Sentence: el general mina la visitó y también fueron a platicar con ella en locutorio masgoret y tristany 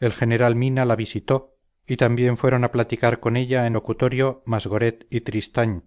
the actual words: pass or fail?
pass